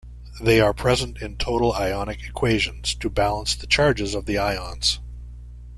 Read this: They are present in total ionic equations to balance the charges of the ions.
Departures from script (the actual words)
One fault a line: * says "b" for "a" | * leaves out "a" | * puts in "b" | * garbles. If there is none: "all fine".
all fine